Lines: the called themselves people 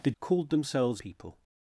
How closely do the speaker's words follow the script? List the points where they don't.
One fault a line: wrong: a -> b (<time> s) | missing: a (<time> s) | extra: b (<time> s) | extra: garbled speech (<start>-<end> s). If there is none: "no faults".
no faults